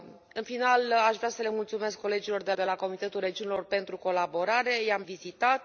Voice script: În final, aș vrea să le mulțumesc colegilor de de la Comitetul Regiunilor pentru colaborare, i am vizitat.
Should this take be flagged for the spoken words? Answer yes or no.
no